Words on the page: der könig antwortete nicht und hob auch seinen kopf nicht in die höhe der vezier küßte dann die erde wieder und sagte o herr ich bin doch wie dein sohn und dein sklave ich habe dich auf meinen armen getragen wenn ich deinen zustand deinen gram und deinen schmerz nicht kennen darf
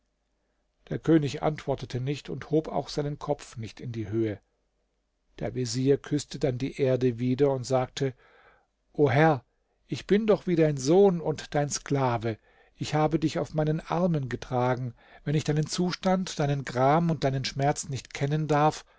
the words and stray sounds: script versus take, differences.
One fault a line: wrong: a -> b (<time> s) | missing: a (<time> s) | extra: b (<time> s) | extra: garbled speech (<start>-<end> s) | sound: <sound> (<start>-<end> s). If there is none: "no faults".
no faults